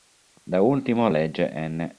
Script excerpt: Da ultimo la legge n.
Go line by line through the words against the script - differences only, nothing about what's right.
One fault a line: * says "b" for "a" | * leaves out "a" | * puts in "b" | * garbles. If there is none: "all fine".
* leaves out "la"